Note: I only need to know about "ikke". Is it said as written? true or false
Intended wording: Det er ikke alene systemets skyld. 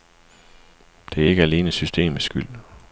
true